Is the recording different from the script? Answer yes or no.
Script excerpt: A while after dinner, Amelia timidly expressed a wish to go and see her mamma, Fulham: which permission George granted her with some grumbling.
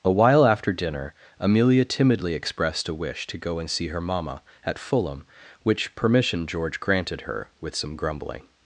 yes